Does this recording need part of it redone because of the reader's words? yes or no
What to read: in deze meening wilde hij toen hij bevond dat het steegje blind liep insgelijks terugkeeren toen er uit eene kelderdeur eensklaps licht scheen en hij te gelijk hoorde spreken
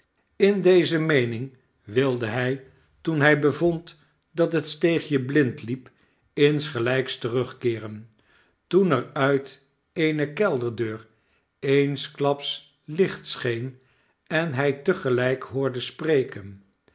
no